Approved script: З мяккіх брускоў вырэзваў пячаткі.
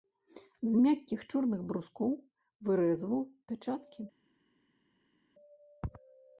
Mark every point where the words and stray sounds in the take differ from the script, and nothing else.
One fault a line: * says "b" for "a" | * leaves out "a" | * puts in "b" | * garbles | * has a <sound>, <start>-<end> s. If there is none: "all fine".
* puts in "чорных"